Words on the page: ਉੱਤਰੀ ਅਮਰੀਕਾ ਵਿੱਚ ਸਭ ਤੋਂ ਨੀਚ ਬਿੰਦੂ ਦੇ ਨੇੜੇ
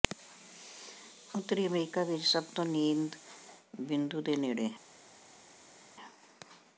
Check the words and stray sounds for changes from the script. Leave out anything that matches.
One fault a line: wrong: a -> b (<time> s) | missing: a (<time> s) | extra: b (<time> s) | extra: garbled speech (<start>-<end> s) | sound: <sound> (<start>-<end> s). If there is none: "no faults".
no faults